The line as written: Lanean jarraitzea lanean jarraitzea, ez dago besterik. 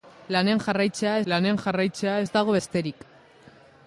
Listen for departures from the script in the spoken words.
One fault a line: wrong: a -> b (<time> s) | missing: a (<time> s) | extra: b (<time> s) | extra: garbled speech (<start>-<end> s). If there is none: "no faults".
no faults